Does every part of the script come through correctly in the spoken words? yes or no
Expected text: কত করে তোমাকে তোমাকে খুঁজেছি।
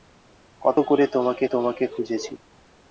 yes